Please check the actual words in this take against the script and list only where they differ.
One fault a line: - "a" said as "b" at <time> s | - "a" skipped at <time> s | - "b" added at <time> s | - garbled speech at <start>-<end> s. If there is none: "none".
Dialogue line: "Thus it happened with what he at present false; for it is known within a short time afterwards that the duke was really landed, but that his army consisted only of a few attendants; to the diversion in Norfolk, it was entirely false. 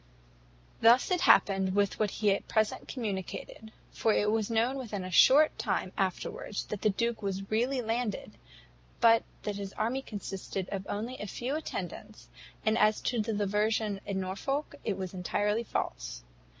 - "false" said as "communicated" at 2.9 s
- "is" said as "was" at 4.3 s
- "and as" added at 12.6 s